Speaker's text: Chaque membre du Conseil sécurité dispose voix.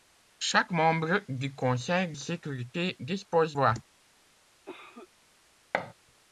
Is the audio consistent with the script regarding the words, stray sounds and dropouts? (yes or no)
no